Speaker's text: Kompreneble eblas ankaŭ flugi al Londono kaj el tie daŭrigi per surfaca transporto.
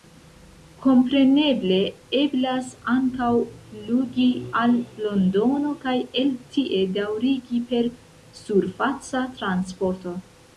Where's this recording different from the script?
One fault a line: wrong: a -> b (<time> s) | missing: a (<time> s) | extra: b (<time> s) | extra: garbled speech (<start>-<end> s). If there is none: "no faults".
no faults